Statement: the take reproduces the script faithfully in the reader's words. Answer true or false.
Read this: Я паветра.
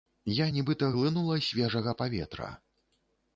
false